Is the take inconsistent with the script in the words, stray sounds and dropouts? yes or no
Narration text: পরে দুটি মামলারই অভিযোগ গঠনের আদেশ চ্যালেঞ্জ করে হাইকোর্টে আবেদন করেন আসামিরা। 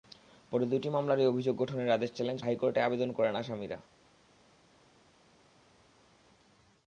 yes